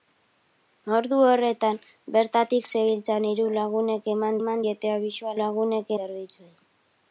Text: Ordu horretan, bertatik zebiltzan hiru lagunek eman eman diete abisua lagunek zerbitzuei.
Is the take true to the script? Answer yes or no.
yes